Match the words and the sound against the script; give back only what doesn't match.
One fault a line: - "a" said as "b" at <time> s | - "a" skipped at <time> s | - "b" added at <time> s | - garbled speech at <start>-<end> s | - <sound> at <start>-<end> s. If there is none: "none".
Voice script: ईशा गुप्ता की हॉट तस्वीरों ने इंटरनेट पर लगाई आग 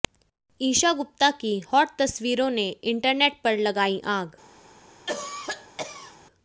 - cough at 5.1-6.2 s